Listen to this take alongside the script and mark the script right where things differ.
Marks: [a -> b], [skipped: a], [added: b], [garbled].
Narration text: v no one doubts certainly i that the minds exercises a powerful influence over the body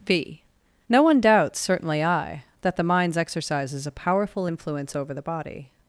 v no one doubts certainly i that the minds exercises a powerful influence over the body